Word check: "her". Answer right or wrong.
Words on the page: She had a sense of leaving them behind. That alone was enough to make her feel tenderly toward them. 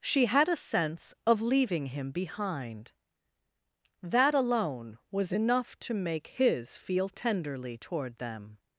wrong